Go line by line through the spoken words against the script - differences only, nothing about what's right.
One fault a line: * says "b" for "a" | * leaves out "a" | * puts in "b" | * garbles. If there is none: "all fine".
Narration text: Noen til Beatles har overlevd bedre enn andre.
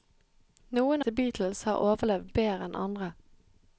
all fine